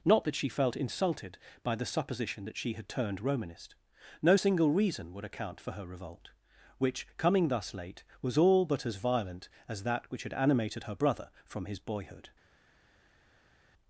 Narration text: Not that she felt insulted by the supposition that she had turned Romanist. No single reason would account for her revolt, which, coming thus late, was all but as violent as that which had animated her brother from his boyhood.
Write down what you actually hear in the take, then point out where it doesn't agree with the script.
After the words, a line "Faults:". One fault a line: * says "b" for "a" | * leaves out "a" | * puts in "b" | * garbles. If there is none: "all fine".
Not that she felt insulted by the supposition that she had turned Romanist. No single reason would account for her revolt, which, coming thus late, was all but as violent as that which had animated her brother from his boyhood.
Faults:
all fine